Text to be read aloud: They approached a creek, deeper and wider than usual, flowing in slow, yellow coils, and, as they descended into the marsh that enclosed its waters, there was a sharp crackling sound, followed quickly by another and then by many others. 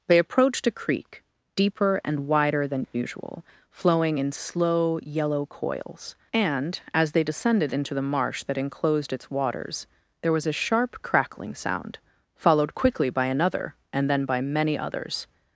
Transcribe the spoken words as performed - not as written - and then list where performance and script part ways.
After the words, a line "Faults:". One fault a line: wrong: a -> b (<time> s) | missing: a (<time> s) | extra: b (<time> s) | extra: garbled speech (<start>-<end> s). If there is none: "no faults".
They approached a creek, deeper and wider than usual, flowing in slow, yellow coils, and, as they descended into the marsh that enclosed its waters, there was a sharp crackling sound, followed quickly by another and then by many others.
Faults:
no faults